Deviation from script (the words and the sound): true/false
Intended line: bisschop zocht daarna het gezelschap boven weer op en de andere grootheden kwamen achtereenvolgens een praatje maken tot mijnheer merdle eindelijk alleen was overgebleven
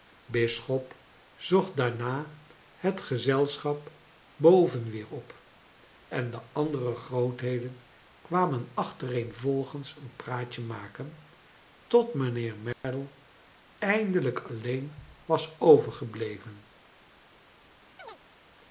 true